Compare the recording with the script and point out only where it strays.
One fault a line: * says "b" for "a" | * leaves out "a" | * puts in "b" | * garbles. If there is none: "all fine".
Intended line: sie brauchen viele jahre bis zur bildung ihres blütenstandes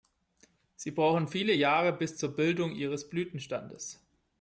all fine